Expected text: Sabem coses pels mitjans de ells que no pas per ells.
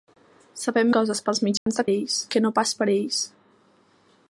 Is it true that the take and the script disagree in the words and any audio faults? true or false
true